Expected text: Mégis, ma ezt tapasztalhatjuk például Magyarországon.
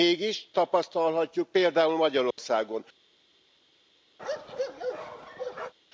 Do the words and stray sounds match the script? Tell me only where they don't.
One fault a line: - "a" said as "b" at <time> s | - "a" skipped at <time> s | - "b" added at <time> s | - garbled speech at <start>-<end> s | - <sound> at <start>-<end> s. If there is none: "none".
- "ma ezt" skipped at 0.5 s
- dropout at 2.3-2.4 s
- bark at 4.2-5.7 s